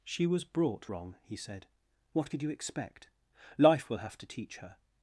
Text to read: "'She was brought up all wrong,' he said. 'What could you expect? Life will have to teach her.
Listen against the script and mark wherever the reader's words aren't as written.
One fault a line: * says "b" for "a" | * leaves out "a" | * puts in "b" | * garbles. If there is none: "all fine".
* leaves out "up all"